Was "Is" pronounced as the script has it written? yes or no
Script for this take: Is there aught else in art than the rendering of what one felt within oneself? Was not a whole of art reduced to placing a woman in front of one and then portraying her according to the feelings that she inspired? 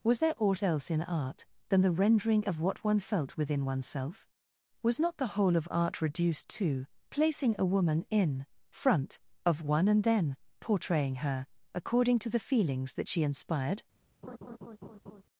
no